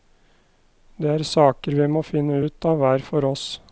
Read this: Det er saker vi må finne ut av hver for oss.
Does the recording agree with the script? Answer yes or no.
yes